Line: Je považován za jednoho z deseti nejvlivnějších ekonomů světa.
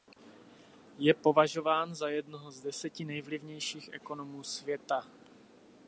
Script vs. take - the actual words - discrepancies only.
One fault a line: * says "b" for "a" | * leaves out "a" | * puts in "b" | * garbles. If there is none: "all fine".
all fine